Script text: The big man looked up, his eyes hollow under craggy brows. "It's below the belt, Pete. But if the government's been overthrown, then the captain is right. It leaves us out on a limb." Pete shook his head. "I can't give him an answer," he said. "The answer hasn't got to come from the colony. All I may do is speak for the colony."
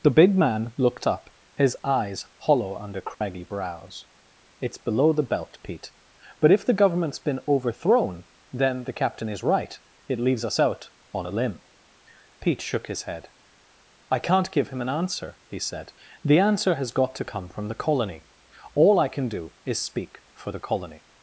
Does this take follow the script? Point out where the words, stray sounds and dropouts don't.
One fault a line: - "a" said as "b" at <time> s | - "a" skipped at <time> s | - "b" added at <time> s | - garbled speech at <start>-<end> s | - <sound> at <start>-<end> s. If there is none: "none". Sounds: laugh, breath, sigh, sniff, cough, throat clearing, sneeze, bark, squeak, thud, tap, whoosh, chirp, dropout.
- dropout at 3.1-3.2 s
- "hasn't" said as "has" at 16.7 s
- "may" said as "can" at 19.1 s